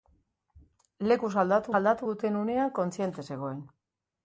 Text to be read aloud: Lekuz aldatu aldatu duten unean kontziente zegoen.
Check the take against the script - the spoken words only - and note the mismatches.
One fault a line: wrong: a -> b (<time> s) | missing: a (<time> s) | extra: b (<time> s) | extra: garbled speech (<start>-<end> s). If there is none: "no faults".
no faults